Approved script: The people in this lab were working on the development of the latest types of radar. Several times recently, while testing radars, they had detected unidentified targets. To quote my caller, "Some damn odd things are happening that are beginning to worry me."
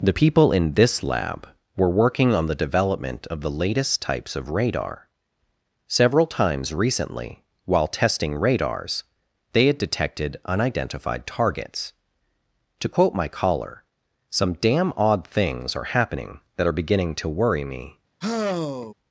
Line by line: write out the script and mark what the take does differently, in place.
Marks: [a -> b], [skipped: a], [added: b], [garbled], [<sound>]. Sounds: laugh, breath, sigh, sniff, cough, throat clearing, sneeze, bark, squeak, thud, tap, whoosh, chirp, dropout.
The people in this lab were working on the development of the latest types of radar. Several times recently, while testing radars, they had detected unidentified targets. To quote my caller, "Some damn odd things are happening that are beginning to worry me." [sigh]